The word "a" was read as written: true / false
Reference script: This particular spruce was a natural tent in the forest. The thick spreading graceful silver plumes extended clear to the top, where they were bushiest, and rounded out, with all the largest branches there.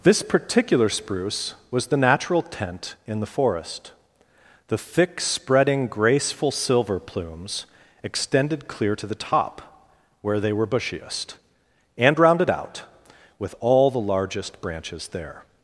false